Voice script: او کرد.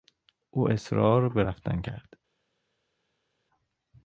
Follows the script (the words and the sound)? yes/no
no